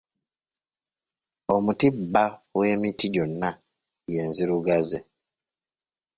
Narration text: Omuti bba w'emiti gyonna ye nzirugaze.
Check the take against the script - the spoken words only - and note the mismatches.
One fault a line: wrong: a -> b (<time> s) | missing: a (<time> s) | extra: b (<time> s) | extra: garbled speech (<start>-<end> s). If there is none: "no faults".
no faults